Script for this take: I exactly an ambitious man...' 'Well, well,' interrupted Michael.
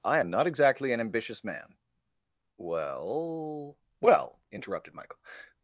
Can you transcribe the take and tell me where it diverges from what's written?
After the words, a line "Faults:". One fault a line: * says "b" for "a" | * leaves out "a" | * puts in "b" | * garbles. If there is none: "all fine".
I am not exactly an ambitious man...' 'Well, well,' interrupted Michael.
Faults:
* puts in "am not"